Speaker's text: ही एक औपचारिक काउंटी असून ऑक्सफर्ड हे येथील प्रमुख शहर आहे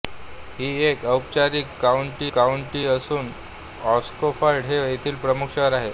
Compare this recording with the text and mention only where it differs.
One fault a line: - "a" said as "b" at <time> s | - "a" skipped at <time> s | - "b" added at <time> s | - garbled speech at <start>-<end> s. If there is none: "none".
- "काउंटी" added at 2.3 s